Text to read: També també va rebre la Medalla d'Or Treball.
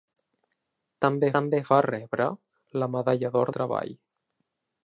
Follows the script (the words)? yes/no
yes